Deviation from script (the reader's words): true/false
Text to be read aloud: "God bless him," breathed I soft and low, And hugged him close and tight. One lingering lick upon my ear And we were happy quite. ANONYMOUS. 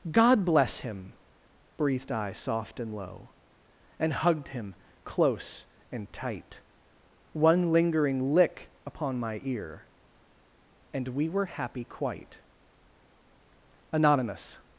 false